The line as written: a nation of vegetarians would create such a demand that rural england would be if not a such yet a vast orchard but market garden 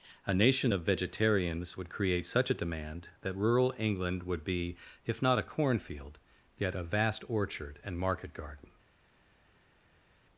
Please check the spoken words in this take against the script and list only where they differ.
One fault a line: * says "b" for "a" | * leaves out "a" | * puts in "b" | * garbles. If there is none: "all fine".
* says "cornfield" for "such"
* says "and" for "but"